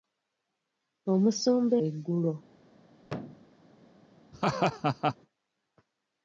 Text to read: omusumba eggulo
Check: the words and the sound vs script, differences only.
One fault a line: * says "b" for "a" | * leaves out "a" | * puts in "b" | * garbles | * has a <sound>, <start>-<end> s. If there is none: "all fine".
* has a thud, 3.0-3.5 s
* has a laugh, 4.3-5.2 s